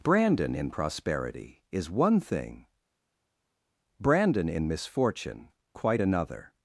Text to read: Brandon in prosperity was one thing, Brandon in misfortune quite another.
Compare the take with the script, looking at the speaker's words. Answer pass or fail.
fail